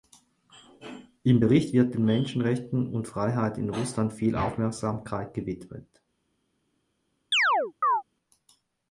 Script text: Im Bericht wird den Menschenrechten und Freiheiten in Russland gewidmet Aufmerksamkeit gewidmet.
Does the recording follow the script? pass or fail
fail